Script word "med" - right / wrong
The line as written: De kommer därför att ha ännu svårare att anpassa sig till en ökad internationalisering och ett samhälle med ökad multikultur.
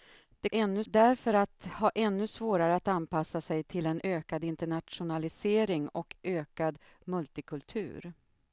wrong